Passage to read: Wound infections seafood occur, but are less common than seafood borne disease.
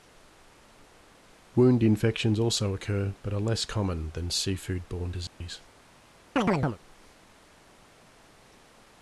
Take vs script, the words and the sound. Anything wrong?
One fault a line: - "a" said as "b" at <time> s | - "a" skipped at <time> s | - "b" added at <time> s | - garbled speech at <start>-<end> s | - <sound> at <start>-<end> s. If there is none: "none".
- "seafood" said as "also" at 2.4 s
- dropout at 5.3-5.4 s
- chirp at 6.4-6.8 s